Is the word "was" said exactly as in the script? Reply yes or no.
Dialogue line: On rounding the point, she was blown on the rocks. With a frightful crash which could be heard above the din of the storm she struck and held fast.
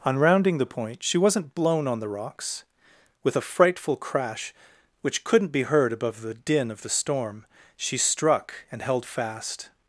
no